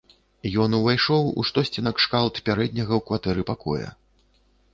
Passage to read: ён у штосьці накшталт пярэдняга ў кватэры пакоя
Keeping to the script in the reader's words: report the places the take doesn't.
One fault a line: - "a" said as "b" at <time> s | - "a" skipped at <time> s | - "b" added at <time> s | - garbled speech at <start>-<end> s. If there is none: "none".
- "увайшоў" added at 0.8 s